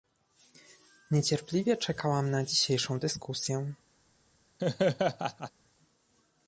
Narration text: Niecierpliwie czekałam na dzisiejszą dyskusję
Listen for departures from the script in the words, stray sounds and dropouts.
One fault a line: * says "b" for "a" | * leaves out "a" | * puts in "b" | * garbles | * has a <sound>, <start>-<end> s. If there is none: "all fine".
* has a laugh, 4.6-5.5 s